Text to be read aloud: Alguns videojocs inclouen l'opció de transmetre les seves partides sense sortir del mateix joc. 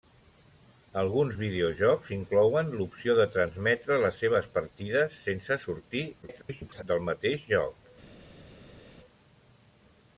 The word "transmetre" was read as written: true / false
true